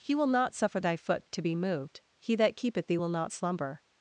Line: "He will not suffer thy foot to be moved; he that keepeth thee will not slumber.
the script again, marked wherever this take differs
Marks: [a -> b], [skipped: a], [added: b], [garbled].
"He will not suffer thy foot to be moved; he that keepeth thee will not slumber.